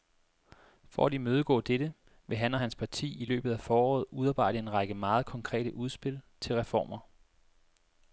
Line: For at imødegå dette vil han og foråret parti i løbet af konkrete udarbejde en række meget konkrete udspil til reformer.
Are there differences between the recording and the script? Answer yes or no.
yes